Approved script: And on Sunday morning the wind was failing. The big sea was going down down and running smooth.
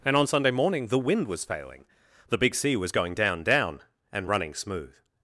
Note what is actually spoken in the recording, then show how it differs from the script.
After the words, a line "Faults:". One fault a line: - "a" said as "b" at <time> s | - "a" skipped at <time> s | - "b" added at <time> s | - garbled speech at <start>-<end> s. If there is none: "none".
And on Sunday morning the wind was failing. The big sea was going down down and running smooth.
Faults:
none